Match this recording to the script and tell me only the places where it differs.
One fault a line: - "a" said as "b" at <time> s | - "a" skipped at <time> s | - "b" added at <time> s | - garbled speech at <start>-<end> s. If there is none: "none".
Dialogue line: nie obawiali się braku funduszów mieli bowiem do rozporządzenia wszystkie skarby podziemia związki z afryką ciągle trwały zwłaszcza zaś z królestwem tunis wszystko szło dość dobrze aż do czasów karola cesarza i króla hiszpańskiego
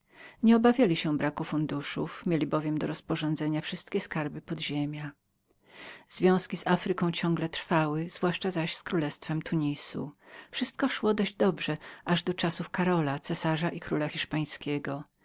none